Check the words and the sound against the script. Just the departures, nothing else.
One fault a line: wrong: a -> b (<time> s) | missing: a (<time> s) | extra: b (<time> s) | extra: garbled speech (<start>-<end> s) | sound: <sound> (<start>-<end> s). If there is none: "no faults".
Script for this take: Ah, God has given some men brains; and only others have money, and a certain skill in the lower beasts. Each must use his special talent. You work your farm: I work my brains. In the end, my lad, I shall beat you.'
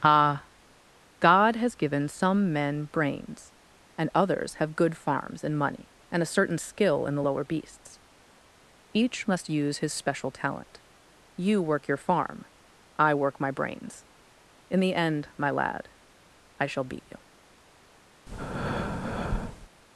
missing: only (4.1 s)
extra: good farms and (4.8 s)
sound: breath (18.3-19.7 s)